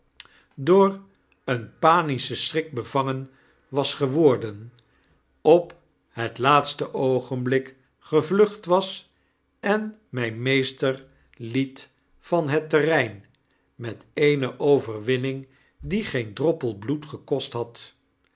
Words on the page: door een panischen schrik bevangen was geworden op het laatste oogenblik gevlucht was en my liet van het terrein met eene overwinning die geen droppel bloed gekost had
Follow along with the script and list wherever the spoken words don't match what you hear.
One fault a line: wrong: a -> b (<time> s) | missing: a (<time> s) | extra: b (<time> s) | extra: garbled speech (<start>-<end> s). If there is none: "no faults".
extra: meester (10.3 s)